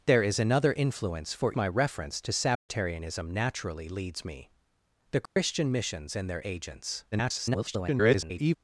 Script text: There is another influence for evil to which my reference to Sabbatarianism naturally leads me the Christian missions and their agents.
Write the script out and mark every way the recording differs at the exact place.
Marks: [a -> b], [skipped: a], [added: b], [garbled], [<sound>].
There is another influence for [skipped: evil to which] my reference to Sabbatarianism [dropout] naturally leads me the Christian [dropout] missions and their agents. [garbled]